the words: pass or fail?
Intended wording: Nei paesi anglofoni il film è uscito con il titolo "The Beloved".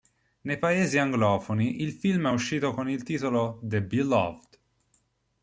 pass